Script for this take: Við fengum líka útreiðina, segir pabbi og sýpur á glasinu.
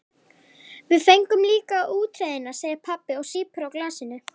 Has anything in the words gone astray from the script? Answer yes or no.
no